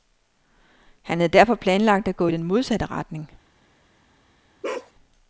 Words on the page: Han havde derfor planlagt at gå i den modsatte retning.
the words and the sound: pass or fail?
fail